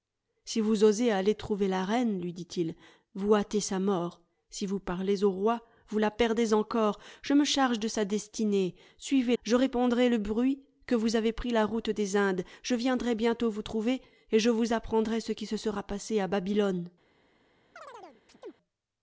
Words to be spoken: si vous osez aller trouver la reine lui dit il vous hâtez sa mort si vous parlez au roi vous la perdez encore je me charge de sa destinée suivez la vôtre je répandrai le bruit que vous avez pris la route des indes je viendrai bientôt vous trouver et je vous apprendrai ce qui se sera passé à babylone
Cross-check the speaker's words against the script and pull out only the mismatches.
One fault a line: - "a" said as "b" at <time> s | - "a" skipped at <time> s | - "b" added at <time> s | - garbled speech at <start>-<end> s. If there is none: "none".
- "la vôtre" skipped at 9.3 s